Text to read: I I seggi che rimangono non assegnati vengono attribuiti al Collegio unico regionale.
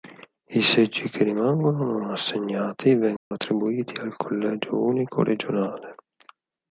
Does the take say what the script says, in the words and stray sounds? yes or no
no